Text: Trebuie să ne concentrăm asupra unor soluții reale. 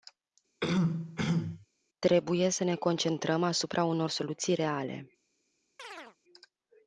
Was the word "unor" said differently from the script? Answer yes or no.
no